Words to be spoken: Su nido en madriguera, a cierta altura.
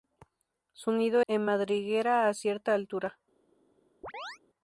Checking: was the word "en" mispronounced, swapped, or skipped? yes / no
no